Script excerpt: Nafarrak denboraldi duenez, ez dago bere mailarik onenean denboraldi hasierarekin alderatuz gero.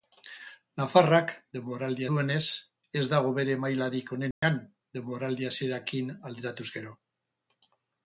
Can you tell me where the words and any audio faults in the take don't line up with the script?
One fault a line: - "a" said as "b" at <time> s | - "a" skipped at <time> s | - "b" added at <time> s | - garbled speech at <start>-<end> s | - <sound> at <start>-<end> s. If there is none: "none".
- dropout at 4.3-4.4 s